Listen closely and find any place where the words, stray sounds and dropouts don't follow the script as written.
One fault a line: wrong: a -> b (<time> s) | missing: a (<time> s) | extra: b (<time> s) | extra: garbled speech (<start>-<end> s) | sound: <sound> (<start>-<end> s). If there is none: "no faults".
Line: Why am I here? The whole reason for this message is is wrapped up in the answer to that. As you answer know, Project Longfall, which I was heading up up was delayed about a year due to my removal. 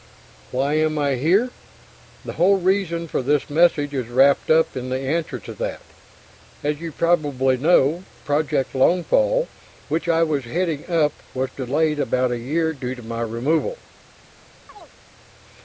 missing: is (4.1 s)
wrong: answer -> probably (6.9 s)
missing: up (11.1 s)
sound: chirp (14.7-14.9 s)